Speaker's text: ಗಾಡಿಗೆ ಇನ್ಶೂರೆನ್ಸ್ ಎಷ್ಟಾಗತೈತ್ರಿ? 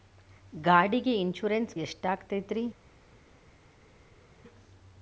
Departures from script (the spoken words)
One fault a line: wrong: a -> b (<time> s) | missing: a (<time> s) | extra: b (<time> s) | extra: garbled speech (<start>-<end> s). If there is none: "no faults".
no faults